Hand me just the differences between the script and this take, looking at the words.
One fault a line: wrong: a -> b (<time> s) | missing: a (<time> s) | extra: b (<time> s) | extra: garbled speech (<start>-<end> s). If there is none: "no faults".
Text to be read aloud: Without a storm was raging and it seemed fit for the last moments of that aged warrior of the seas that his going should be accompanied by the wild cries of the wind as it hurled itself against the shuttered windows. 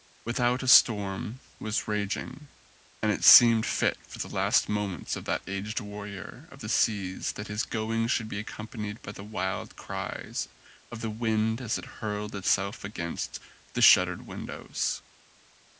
no faults